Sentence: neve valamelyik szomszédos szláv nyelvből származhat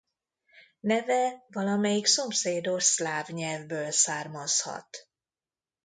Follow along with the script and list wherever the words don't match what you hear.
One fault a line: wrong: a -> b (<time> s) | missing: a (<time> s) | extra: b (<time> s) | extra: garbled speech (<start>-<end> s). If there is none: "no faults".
no faults